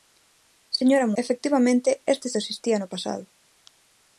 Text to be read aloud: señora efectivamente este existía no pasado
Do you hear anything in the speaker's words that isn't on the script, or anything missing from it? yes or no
no